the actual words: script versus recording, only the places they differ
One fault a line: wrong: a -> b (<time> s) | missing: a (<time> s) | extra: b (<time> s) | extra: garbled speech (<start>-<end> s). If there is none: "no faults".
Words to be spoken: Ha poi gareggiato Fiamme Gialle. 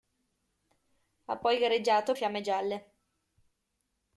no faults